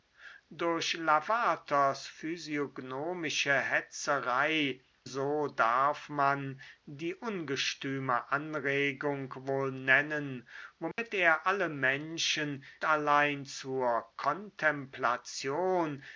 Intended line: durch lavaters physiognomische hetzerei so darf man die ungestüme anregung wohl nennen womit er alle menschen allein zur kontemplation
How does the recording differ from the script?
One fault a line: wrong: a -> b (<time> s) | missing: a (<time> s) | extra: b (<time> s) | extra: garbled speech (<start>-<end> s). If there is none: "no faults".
no faults